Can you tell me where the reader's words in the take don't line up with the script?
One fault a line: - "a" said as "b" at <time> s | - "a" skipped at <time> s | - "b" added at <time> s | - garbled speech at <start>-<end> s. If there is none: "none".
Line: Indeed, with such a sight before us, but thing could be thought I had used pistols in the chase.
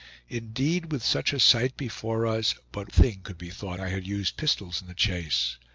none